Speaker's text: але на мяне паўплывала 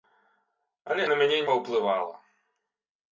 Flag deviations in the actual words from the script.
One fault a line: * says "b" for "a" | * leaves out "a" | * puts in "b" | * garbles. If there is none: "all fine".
all fine